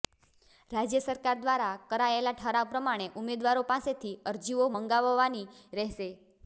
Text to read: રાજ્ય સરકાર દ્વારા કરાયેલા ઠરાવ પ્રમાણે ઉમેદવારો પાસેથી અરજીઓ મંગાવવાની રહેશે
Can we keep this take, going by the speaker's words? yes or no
yes